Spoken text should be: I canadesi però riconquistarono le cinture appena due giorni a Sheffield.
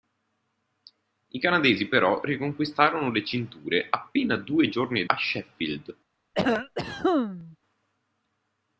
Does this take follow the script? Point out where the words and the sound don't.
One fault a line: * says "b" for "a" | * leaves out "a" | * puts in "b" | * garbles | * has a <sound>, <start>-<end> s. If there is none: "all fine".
* has a cough, 6.3-7.6 s